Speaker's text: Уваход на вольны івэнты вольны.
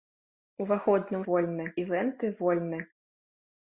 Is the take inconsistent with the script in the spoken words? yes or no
no